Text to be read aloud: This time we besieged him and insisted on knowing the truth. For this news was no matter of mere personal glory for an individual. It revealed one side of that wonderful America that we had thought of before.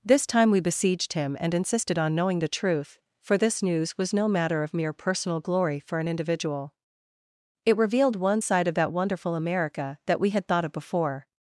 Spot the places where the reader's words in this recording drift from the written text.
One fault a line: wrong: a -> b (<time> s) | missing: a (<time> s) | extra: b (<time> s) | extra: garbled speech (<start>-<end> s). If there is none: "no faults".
no faults